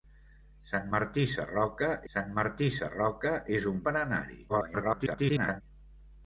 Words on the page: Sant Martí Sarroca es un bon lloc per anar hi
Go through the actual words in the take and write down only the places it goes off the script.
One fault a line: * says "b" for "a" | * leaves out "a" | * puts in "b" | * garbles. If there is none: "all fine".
* puts in "sant Martí Sarroca"
* leaves out "bon lloc"
* garbles